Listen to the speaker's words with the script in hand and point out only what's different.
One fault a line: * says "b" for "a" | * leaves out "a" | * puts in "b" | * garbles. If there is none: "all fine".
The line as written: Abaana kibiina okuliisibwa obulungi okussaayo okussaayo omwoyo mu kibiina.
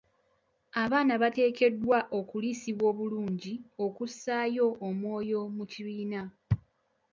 * says "bateekeddwa" for "kibiina"
* leaves out "okussaayo"